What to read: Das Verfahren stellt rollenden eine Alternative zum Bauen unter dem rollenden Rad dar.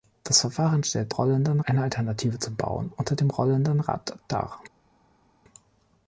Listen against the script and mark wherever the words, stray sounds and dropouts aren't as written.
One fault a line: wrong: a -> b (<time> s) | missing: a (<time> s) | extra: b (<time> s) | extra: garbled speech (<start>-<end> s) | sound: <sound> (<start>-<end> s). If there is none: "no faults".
no faults